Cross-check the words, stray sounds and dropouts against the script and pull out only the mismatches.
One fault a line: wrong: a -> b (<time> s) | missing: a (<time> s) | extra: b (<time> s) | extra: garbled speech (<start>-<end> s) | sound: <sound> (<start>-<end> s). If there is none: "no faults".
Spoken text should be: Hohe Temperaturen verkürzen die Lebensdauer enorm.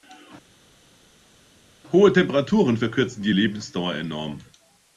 no faults